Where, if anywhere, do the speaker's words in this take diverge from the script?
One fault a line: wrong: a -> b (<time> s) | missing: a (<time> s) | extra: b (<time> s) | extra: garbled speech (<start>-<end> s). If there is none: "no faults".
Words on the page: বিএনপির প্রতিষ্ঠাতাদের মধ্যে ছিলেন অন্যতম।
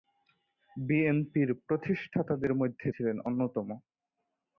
no faults